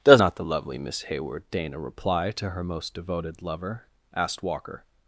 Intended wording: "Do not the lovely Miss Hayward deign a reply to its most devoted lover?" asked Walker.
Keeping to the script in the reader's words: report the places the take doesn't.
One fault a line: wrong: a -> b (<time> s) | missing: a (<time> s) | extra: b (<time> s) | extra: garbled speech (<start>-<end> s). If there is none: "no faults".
wrong: Do -> Does (0.0 s)
wrong: its -> her (2.5 s)